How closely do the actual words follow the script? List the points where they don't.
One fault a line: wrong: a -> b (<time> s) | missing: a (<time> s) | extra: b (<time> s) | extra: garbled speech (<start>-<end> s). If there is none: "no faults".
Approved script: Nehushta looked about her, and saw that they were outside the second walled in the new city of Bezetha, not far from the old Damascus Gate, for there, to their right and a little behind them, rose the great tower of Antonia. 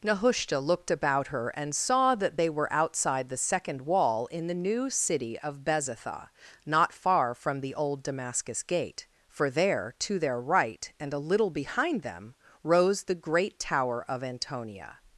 wrong: walled -> wall (3.8 s)